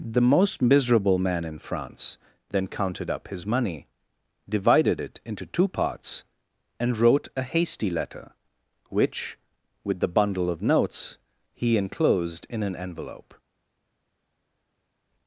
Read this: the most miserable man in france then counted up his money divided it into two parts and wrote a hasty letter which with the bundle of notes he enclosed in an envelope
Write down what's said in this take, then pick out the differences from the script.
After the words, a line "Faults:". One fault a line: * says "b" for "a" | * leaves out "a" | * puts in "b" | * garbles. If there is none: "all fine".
the most miserable man in france then counted up his money divided it into two parts and wrote a hasty letter which with the bundle of notes he enclosed in an envelope
Faults:
all fine